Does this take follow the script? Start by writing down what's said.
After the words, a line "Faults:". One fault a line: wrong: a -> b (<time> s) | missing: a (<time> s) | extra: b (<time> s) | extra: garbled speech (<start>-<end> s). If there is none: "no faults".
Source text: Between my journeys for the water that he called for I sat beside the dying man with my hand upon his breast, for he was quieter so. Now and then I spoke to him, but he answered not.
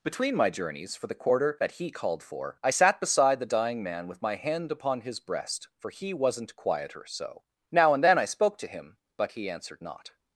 Between my journeys for the quarter that he called for I sat beside the dying man with my hand upon his breast, for he wasn't quieter so. Now and then I spoke to him, but he answered not.
Faults:
wrong: water -> quarter (1.1 s)
wrong: was -> wasn't (6.1 s)